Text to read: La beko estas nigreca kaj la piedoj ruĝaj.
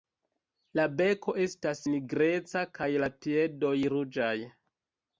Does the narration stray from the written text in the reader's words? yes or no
no